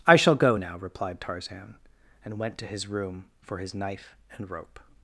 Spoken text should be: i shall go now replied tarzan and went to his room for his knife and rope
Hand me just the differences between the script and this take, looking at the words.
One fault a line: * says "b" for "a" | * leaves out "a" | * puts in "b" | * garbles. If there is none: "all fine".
all fine